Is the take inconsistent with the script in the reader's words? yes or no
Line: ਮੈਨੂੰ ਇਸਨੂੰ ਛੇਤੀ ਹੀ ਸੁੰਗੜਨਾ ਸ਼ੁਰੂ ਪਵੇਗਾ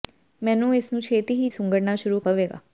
no